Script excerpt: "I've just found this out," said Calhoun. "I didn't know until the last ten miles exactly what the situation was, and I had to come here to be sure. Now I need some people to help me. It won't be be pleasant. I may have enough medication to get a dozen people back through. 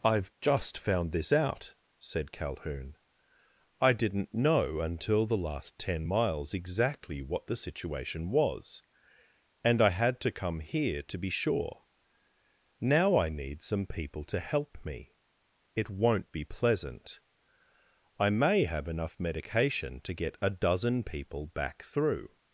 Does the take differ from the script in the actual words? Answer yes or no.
yes